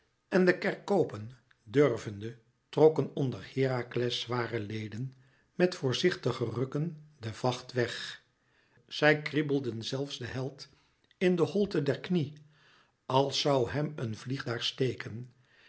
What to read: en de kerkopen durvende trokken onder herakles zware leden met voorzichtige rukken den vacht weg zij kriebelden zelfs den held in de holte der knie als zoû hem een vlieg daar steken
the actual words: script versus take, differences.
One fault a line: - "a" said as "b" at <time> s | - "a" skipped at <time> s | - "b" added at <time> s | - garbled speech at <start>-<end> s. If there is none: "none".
none